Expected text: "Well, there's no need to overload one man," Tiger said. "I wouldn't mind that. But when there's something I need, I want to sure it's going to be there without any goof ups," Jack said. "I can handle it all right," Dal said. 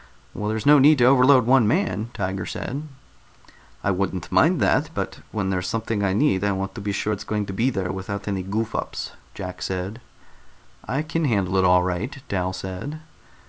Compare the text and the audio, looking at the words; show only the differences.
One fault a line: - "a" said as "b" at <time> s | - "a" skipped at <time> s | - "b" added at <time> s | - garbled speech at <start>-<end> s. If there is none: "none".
- "be" added at 6.8 s